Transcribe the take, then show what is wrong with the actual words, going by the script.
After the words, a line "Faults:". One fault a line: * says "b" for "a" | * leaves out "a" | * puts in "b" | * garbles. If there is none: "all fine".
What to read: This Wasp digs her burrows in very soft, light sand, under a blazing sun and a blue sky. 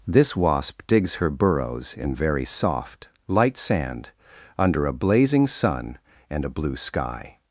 This Wasp digs her burrows in very soft, light sand, under a blazing sun and a blue sky.
Faults:
all fine